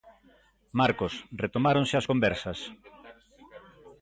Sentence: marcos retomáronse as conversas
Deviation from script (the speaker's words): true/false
false